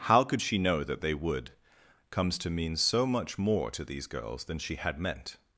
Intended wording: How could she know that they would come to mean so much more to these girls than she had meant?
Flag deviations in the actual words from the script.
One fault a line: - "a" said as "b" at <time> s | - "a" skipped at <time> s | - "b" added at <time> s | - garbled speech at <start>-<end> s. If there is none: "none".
- "come" said as "comes" at 2.1 s